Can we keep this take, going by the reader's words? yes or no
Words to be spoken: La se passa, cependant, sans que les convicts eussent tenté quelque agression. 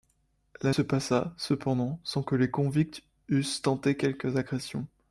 yes